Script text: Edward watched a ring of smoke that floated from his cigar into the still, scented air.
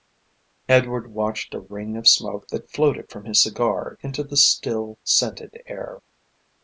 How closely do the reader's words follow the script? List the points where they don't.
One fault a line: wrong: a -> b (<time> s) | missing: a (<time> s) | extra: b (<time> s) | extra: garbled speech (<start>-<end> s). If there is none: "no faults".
no faults